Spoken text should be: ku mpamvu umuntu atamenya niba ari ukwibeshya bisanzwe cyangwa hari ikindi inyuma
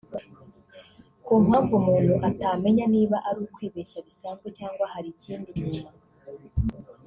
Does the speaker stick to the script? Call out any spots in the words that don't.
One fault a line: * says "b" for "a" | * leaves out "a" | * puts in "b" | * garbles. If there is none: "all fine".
all fine